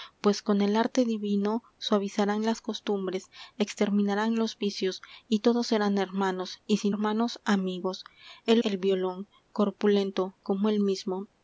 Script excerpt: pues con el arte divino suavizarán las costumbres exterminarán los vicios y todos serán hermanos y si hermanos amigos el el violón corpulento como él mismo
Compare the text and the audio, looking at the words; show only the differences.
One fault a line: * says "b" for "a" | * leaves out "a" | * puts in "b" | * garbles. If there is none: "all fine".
all fine